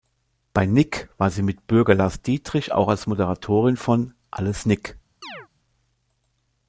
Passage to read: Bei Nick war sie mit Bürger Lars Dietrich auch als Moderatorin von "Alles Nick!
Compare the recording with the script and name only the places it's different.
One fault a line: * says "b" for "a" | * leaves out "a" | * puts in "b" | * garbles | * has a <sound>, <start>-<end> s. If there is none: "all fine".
* has a chirp, 5.2-5.5 s